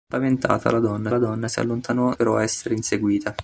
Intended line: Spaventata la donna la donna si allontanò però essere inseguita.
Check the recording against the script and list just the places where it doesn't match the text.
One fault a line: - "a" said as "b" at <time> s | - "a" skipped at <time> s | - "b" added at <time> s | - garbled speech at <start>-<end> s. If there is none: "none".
none